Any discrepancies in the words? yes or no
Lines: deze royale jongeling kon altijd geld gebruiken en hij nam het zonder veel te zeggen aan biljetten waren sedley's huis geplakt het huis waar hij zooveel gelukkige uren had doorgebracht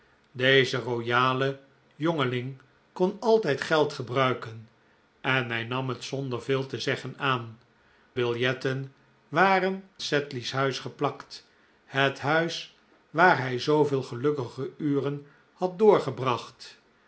no